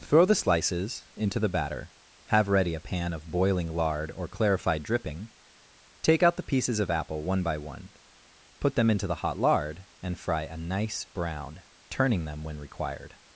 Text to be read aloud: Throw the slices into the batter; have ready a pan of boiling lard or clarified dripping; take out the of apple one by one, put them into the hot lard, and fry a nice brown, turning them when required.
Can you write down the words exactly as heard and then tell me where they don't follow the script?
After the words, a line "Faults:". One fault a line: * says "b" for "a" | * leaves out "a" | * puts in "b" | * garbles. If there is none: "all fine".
Throw the slices into the batter; have ready a pan of boiling lard or clarified dripping; take out the pieces of apple one by one, put them into the hot lard, and fry a nice brown, turning them when required.
Faults:
* puts in "pieces"